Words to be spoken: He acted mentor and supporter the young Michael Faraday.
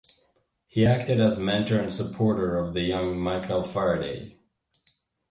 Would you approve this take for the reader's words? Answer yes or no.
no